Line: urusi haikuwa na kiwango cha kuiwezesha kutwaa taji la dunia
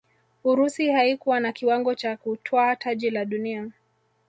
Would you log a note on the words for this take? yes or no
yes